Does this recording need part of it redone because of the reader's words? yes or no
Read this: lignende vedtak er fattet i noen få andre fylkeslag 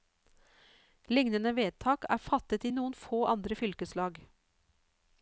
no